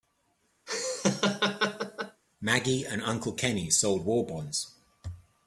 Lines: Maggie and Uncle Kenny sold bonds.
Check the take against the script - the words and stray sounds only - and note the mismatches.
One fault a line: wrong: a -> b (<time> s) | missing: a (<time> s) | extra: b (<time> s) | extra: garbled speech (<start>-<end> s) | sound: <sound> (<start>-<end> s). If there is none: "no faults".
sound: laugh (0.7-2.2 s)
extra: war (4.0 s)